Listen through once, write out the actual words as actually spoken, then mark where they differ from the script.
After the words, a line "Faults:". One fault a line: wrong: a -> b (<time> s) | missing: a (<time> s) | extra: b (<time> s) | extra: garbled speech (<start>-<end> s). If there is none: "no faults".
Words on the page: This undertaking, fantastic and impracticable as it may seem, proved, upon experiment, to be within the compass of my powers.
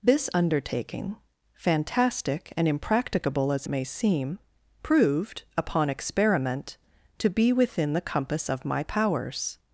This undertaking, fantastic and impracticable as may seem, proved, upon experiment, to be within the compass of my powers.
Faults:
missing: it (3.7 s)